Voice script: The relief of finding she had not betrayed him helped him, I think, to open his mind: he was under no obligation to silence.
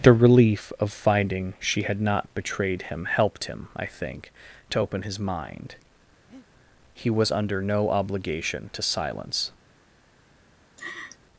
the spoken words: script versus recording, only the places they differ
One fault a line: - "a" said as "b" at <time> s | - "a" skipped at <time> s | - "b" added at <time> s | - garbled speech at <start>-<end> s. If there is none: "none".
none